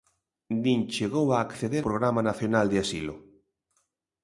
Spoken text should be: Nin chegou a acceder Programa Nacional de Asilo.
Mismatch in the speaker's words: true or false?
false